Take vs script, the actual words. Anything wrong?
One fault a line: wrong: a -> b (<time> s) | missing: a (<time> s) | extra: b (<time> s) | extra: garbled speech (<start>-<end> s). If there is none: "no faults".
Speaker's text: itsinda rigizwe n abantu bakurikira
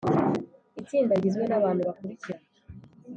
no faults